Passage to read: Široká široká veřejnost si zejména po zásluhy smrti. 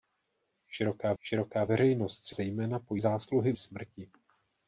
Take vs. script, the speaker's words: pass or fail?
pass